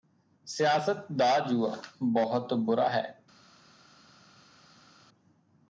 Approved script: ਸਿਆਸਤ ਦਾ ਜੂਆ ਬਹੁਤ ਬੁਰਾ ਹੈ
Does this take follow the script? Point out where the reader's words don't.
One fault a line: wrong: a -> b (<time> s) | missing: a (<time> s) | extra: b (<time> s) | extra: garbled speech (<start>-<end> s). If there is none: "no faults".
no faults